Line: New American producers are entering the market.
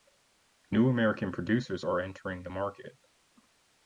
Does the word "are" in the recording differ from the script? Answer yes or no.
no